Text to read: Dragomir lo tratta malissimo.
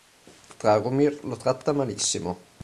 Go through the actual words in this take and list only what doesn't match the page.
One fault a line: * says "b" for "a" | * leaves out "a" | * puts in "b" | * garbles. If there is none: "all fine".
all fine